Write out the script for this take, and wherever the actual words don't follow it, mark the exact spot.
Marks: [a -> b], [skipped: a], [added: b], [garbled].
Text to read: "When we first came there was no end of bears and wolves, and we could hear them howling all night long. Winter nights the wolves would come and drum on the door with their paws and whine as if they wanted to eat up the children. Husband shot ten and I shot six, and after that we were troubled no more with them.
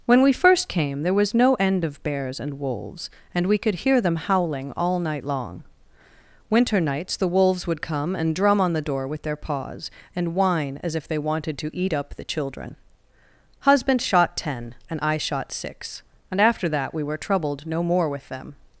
"When we first came there was no end of bears and wolves, and we could hear them howling all night long. Winter nights the wolves would come and drum on the door with their paws and whine as if they wanted to eat up the children. Husband shot ten and I shot six, and after that we were troubled no more with them.